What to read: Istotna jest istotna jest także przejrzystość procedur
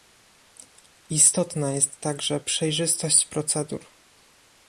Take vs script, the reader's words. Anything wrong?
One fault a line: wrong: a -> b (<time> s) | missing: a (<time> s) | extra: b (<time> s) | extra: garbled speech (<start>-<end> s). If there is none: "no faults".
missing: istotna jest (2.0 s)